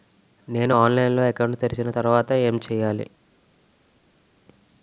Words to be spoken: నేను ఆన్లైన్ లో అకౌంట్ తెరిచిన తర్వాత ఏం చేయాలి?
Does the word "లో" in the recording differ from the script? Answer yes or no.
no